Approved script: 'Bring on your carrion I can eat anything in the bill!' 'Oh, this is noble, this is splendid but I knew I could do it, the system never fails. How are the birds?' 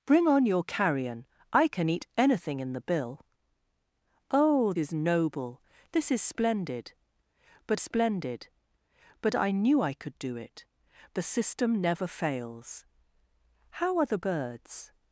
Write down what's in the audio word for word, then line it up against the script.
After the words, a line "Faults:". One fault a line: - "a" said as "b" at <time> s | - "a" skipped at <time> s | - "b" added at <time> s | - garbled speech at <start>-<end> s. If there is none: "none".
'Bring on your carrion I can eat anything in the bill!' 'Oh, is noble, this is splendid but splendid but I knew I could do it, the system never fails. How are the birds?'
Faults:
- "this" skipped at 4.7 s
- "splendid but" added at 7.8 s